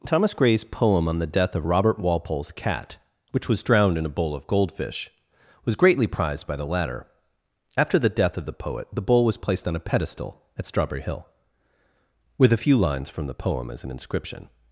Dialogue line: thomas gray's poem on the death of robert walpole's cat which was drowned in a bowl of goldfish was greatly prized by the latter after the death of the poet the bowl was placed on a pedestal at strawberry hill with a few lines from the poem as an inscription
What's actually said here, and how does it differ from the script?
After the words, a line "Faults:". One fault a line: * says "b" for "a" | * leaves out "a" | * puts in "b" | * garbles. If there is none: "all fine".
thomas gray's poem on the death of robert walpole's cat which was drowned in a bowl of goldfish was greatly prized by the latter after the death of the poet the bowl was placed on a pedestal at strawberry hill with a few lines from the poem as an inscription
Faults:
all fine